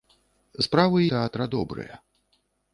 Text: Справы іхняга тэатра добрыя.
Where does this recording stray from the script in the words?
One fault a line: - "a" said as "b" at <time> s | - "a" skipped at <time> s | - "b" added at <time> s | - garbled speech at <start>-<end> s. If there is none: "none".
- "іхняга" skipped at 1.0 s